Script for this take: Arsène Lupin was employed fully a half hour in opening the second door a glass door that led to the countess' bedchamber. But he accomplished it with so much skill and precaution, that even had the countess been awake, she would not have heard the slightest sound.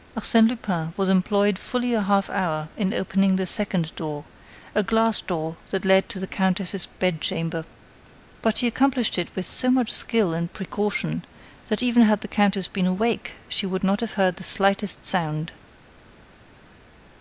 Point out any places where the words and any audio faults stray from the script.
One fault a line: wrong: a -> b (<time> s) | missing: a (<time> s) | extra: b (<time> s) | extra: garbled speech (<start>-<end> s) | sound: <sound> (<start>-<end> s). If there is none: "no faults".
no faults